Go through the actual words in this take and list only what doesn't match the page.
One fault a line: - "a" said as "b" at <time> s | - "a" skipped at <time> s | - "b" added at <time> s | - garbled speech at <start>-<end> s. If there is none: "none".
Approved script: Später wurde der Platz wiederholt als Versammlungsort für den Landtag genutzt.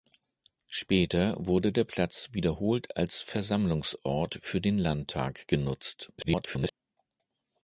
- garbled speech at 6.2-6.7 s